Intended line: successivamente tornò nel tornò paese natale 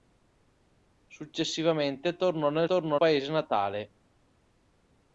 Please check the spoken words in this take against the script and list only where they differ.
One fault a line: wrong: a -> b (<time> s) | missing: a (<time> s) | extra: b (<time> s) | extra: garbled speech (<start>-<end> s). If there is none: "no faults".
no faults